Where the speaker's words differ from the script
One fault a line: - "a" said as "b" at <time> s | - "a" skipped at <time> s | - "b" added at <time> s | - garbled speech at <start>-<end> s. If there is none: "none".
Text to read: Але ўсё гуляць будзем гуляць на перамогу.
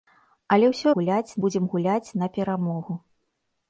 none